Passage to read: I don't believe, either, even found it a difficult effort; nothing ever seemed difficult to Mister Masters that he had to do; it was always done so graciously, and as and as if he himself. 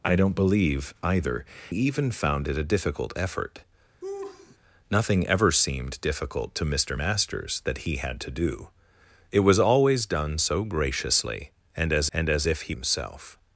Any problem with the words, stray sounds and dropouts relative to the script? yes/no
yes